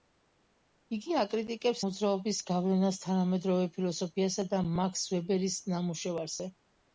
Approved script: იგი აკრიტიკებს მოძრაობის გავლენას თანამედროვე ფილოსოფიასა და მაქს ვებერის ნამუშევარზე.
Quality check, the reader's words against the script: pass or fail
pass